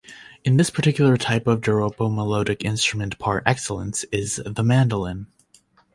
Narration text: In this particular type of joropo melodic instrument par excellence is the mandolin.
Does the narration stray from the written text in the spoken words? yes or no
no